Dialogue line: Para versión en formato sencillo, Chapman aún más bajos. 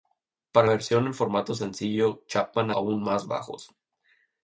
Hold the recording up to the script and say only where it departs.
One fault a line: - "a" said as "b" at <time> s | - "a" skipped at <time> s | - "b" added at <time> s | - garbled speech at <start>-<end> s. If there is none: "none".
none